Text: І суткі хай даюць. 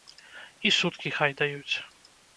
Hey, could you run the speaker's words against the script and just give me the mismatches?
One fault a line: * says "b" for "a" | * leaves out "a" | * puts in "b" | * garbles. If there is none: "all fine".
all fine